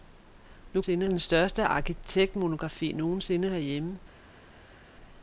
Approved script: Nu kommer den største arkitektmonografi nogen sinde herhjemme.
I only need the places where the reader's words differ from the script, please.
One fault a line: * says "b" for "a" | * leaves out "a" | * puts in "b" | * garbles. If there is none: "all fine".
* says "sinde" for "kommer"